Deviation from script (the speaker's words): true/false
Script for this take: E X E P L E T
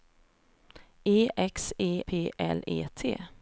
false